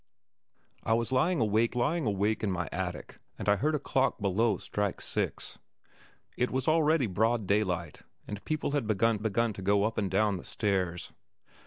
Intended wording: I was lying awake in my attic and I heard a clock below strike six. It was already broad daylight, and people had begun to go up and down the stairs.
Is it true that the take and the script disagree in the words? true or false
true